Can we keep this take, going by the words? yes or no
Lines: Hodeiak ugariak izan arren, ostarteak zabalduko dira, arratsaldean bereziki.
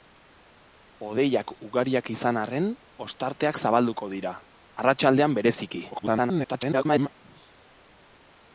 no